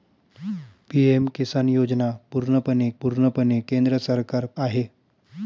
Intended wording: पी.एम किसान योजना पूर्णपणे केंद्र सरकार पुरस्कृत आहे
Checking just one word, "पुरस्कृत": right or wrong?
wrong